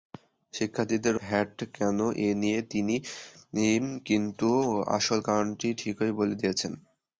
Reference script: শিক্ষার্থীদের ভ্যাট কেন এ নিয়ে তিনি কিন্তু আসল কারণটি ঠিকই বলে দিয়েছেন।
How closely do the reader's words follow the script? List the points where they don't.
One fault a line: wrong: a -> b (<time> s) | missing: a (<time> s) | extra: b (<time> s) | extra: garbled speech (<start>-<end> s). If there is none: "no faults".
no faults